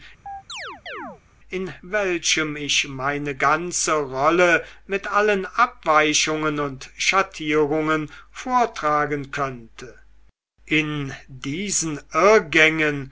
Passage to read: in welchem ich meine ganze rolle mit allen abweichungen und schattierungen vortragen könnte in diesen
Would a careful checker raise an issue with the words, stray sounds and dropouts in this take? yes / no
yes